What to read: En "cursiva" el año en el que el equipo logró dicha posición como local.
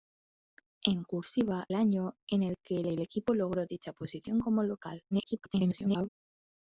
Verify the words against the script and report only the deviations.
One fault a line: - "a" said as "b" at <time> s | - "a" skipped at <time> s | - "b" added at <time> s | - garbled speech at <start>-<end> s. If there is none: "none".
- "el" skipped at 1.7 s
- "el" added at 2.9 s
- garbled speech at 5.1-6.1 s